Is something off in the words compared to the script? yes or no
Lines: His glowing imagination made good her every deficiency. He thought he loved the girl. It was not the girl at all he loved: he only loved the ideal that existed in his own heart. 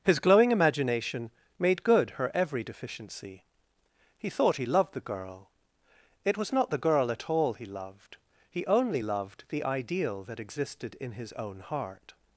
no